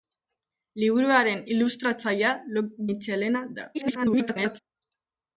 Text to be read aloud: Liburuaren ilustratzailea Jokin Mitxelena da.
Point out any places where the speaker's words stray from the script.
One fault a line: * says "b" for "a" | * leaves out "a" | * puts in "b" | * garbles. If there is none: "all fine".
* leaves out "Jokin"
* garbles